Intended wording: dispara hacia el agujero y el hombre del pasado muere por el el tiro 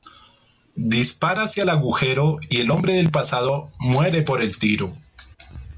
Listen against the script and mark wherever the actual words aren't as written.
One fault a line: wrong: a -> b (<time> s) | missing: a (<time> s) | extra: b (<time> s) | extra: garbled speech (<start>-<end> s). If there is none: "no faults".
missing: el (4.6 s)